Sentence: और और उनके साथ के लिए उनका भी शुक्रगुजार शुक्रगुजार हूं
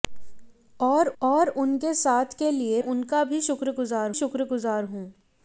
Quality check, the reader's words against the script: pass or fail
pass